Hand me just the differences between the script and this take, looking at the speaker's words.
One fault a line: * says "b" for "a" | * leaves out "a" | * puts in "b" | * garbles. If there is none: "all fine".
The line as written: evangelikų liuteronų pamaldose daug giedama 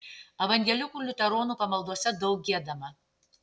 all fine